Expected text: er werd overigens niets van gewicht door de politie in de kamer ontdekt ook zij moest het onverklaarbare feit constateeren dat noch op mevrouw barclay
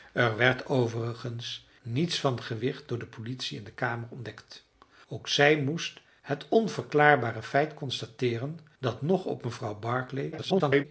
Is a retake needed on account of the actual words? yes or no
yes